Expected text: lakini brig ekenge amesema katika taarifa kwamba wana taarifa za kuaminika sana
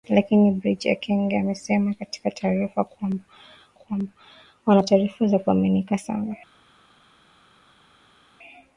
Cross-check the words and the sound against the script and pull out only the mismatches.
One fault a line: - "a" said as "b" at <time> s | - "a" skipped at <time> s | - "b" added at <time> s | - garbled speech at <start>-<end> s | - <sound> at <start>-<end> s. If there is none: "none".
- "kwamba" added at 3.7 s